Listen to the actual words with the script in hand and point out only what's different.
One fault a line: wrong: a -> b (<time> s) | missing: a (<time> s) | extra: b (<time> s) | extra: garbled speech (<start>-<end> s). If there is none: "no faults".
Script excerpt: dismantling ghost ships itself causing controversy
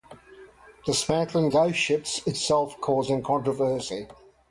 no faults